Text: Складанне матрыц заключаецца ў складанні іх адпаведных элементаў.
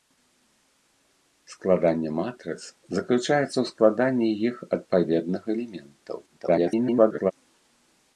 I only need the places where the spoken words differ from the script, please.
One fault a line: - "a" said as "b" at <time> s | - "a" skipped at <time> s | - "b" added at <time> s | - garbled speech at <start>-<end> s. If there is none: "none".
- garbled speech at 6.3-7.3 s